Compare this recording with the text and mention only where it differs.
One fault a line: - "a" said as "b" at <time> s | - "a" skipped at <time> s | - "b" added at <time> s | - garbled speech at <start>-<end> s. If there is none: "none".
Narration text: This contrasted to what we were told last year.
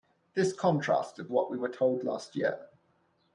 - "to" skipped at 1.3 s